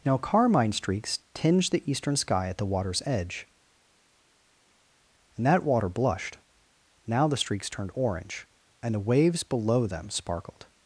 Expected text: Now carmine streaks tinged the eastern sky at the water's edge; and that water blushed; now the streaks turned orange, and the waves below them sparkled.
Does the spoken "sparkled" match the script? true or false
true